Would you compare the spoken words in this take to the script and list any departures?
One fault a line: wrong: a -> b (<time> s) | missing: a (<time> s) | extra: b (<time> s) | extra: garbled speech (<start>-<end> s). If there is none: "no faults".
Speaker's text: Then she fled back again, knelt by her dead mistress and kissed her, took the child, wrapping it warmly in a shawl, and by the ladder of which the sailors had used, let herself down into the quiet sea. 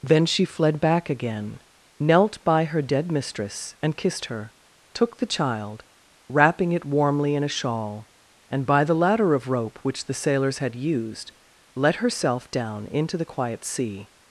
extra: rope (9.5 s)